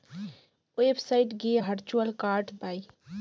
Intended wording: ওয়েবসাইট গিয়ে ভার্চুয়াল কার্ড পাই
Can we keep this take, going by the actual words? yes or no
yes